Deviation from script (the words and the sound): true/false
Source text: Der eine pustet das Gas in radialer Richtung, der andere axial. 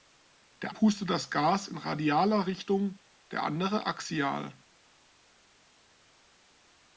true